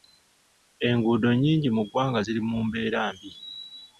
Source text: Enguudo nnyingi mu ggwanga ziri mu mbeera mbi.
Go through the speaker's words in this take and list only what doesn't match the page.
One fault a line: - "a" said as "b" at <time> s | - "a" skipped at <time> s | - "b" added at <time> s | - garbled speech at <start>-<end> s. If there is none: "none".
none